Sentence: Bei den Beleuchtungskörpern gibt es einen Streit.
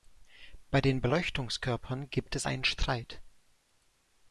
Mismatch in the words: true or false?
false